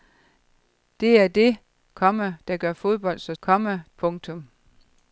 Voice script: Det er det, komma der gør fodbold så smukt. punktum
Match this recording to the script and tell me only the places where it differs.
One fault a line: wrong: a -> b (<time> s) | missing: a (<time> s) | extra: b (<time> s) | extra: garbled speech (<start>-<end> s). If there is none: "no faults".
wrong: smukt -> komma (3.4 s)